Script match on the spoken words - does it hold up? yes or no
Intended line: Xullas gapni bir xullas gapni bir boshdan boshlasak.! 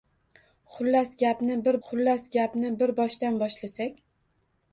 yes